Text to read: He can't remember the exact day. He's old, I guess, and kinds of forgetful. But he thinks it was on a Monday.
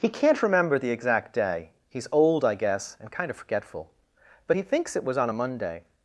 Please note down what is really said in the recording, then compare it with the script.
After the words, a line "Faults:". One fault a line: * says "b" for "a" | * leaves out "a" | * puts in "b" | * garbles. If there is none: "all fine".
He can't remember the exact day. He's old, I guess, and kind of forgetful. But he thinks it was on a Monday.
Faults:
* says "kind" for "kinds"